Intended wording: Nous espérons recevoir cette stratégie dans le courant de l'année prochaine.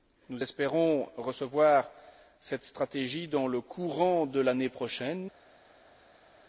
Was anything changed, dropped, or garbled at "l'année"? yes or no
no